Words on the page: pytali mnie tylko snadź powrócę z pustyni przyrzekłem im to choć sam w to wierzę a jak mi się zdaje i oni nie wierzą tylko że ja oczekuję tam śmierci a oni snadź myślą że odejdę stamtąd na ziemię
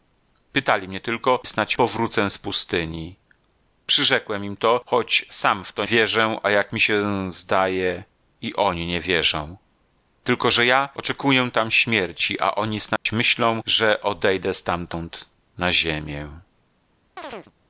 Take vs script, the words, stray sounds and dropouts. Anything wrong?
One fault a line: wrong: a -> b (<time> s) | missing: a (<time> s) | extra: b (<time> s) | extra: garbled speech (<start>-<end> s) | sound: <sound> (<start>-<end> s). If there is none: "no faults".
sound: dropout (13.0-13.1 s)
sound: chirp (17.2-17.5 s)